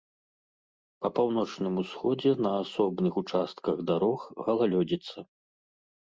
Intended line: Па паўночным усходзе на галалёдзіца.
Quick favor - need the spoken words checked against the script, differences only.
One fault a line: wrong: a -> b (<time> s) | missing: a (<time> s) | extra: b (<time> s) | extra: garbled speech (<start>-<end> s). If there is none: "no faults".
extra: асобных участках дарог (2.6 s)